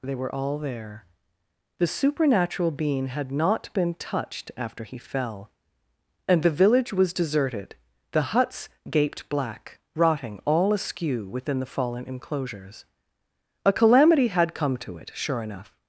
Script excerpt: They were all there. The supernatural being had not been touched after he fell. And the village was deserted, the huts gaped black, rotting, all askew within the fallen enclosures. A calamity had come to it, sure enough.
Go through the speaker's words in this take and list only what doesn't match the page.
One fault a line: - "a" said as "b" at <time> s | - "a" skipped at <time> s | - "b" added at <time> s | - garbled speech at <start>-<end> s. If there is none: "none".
none